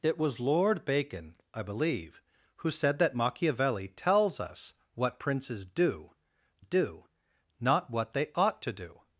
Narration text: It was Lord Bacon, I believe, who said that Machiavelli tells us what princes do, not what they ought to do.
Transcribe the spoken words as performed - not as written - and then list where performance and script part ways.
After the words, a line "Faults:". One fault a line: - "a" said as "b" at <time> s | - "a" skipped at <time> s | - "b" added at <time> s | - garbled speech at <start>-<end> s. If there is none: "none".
It was Lord Bacon, I believe, who said that Machiavelli tells us what princes do do, not what they ought to do.
Faults:
- "do" added at 6.6 s